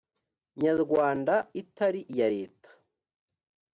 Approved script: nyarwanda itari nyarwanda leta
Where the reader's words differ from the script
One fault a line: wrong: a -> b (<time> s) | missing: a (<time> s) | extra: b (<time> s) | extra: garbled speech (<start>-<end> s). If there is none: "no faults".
wrong: nyarwanda -> iya (2.1 s)